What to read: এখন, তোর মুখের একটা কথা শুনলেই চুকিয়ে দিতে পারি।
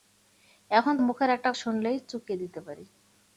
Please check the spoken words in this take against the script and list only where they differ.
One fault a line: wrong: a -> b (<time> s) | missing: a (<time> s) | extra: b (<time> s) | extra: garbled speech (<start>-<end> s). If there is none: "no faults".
missing: তোর (0.9 s)
missing: কথা (1.5 s)